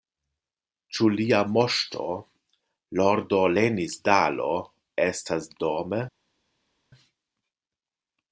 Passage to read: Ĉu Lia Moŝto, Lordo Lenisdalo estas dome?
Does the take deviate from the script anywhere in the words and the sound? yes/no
no